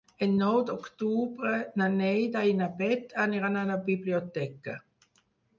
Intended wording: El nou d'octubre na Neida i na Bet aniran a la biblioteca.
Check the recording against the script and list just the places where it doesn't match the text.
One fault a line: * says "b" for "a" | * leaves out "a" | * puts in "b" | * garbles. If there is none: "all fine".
all fine